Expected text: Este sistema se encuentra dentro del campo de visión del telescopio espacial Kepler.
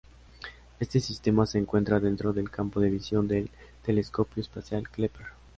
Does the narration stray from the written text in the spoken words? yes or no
no